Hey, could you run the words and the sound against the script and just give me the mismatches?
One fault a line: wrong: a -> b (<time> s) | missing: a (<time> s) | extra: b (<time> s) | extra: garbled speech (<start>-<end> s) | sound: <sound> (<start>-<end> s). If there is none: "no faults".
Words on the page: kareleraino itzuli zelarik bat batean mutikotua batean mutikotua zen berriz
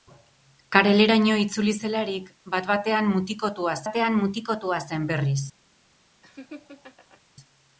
sound: laugh (6.2-7.2 s)